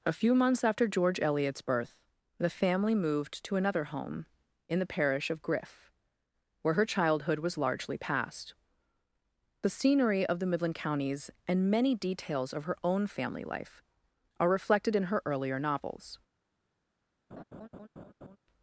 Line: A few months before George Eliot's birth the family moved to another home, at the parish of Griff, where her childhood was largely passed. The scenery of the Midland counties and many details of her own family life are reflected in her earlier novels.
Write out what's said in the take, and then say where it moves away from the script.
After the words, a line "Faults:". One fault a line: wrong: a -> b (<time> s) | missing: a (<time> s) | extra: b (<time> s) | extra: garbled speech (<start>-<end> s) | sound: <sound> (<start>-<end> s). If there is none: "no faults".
A few months after George Eliot's birth the family moved to another home, in the parish of Griff, where her childhood was largely passed. The scenery of the Midland counties and many details of her own family life are reflected in her earlier novels.
Faults:
wrong: before -> after (0.6 s)
wrong: at -> in (4.7 s)
sound: laugh (17.3-18.4 s)